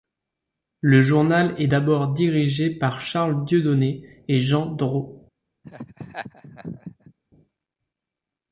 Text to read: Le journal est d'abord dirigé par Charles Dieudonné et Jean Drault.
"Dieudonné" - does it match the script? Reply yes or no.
yes